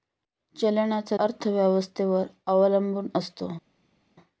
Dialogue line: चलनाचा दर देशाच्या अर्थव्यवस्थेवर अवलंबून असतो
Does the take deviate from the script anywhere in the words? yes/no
yes